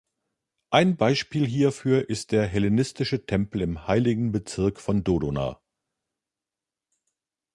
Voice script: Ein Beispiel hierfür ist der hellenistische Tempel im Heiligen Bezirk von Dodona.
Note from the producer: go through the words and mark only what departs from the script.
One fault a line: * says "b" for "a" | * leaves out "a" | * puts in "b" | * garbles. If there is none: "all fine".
all fine